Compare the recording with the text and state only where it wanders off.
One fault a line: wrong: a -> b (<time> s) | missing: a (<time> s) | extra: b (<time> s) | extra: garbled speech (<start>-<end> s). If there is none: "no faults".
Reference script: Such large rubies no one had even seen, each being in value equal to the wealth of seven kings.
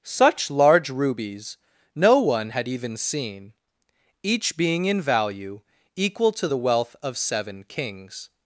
no faults